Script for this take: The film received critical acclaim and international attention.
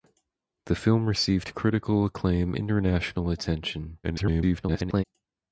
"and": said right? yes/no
no